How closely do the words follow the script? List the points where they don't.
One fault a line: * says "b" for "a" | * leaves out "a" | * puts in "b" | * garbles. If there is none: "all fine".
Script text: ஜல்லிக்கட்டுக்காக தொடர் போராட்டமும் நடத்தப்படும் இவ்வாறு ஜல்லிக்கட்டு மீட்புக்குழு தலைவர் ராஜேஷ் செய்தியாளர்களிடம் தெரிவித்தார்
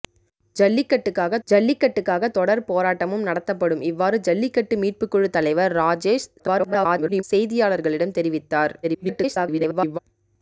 * puts in "ஜல்லிக்கட்டுக்காக"
* garbles
* garbles